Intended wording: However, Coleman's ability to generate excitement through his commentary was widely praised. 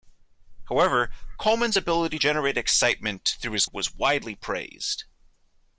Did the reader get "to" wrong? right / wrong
wrong